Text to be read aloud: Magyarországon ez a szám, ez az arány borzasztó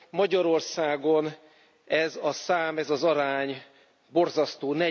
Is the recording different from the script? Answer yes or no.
no